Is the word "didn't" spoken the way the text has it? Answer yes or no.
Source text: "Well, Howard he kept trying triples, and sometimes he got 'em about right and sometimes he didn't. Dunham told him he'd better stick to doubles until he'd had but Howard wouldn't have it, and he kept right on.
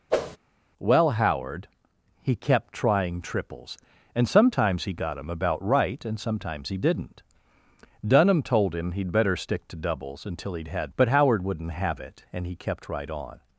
yes